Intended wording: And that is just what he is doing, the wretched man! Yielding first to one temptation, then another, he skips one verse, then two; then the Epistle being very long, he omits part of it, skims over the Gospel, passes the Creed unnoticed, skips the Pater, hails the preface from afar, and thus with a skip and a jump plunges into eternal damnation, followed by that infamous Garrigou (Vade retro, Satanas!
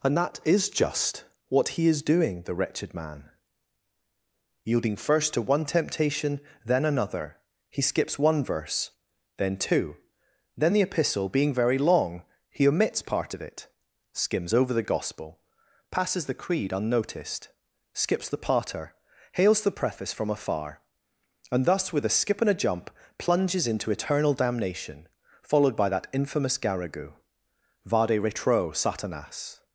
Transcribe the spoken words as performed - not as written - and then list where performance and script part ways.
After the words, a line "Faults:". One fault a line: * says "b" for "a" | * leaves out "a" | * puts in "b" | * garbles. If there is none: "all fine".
And that is just what he is doing, the wretched man! Yielding first to one temptation, then another, he skips one verse, then two; then the Epistle being very long, he omits part of it, skims over the Gospel, passes the Creed unnoticed, skips the Pater, hails the preface from afar, and thus with a skip and a jump plunges into eternal damnation, followed by that infamous Garrigou (Vade retro, Satanas!
Faults:
all fine